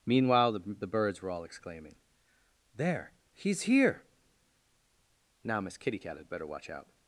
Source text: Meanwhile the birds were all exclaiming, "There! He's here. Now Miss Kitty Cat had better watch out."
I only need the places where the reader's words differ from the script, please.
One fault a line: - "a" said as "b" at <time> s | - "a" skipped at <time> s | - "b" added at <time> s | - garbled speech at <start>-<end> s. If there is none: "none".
- "the" added at 0.8 s